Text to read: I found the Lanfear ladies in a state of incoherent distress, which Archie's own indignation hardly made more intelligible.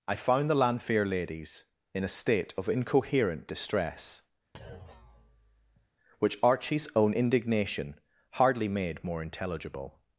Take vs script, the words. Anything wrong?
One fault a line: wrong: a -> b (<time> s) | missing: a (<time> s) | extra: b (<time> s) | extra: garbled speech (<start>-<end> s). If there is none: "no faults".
no faults